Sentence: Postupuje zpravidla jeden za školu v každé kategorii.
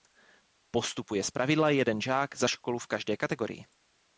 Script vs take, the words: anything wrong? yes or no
yes